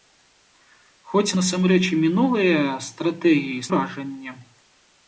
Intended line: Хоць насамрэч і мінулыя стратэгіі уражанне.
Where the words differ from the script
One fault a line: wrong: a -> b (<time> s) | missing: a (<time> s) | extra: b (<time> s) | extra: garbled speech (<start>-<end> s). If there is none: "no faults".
no faults